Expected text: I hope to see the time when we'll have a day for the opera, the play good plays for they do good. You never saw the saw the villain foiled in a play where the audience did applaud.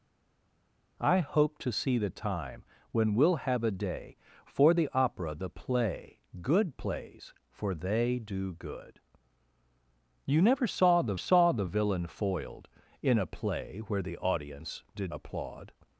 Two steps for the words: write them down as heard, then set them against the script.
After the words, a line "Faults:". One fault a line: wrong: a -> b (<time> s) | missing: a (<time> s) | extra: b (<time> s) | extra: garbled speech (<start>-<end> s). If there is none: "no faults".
I hope to see the time when we'll have a day for the opera, the play good plays for they do good. You never saw the saw the villain foiled in a play where the audience did applaud.
Faults:
no faults